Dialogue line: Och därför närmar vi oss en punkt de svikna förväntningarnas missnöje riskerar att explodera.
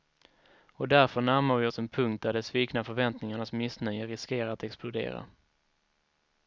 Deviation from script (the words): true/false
true